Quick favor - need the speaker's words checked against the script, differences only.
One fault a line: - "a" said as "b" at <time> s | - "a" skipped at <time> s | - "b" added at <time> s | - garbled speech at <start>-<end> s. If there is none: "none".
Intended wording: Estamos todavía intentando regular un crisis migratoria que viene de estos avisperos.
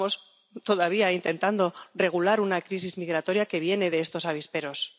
- "un" said as "una" at 2.5 s